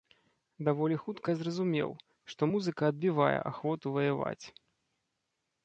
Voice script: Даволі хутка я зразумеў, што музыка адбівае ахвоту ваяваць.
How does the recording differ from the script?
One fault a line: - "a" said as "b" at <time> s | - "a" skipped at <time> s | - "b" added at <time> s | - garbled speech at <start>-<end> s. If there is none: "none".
none